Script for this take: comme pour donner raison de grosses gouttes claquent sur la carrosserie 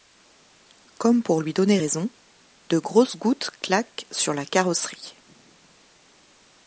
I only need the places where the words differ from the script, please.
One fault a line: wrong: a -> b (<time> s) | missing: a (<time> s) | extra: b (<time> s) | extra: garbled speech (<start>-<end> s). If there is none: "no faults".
extra: lui (1.4 s)